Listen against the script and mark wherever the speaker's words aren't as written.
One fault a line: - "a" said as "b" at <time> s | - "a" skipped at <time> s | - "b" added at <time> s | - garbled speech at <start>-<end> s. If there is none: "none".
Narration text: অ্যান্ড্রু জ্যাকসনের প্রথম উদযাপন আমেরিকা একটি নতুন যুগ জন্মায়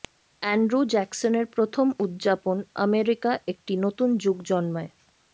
none